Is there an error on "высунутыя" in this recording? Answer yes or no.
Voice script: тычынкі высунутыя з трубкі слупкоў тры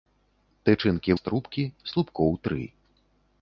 yes